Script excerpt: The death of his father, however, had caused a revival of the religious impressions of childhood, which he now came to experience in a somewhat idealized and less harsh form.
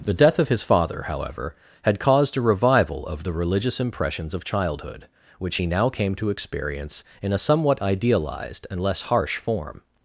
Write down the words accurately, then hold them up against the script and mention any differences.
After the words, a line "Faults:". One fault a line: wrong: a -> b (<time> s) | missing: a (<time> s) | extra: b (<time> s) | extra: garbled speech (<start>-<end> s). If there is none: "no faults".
The death of his father, however, had caused a revival of the religious impressions of childhood, which he now came to experience in a somewhat idealized and less harsh form.
Faults:
no faults